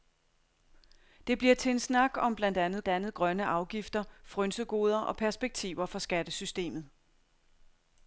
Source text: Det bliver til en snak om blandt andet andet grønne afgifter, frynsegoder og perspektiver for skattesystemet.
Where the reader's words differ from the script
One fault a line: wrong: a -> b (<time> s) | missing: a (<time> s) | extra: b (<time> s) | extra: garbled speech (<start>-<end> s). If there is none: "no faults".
no faults